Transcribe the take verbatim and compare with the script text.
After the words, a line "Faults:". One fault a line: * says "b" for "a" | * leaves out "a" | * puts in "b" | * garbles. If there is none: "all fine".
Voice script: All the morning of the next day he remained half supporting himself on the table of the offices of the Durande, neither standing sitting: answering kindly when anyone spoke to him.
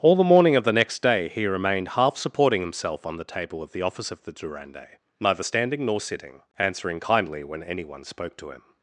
All the morning of the next day he remained half supporting himself on the table of the office of the Durande, neither standing nor sitting: answering kindly when anyone spoke to him.
Faults:
* says "office" for "offices"
* puts in "nor"